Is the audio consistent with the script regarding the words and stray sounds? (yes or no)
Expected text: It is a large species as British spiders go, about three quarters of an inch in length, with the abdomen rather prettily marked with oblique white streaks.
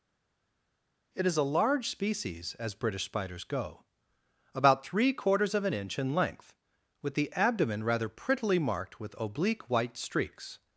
yes